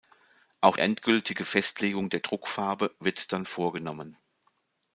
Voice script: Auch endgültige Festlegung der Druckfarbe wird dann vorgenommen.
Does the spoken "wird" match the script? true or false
true